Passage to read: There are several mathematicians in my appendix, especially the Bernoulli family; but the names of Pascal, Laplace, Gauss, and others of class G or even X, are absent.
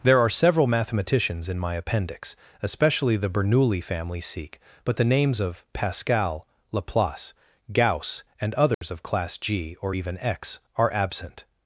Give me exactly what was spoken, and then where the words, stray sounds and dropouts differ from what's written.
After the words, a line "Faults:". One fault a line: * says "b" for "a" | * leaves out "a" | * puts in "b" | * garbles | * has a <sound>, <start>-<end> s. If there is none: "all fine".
There are several mathematicians in my appendix, especially the Bernoulli family; sikh but the names of Pascal, Laplace, Gauss, and others of class G or even X, are absent.
Faults:
* puts in "sikh"
* has a dropout, 8.7-8.8 s